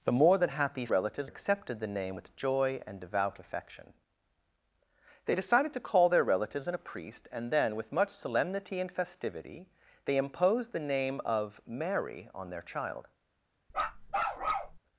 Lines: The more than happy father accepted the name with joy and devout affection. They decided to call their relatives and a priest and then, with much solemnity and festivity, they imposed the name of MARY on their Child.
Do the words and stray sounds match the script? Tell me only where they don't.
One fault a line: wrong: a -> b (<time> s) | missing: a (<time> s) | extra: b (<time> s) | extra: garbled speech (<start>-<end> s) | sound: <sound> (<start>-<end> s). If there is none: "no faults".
wrong: father -> relatives (0.9 s)
sound: bark (13.7-14.8 s)